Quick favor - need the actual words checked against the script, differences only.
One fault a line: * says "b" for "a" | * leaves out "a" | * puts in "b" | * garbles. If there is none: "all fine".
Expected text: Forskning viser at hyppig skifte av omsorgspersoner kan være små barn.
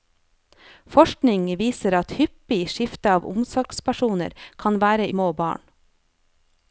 all fine